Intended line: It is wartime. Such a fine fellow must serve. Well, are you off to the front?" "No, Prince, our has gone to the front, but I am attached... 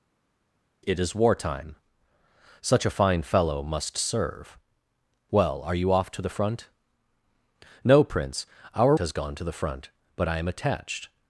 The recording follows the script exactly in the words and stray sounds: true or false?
true